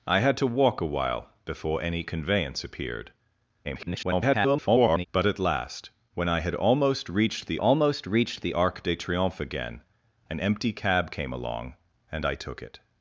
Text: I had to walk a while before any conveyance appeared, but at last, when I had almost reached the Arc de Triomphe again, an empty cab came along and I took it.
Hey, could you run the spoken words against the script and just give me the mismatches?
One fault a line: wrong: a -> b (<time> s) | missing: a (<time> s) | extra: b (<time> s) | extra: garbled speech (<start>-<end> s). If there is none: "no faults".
extra: garbled speech (3.6-5.1 s)
extra: almost reached the (7.6 s)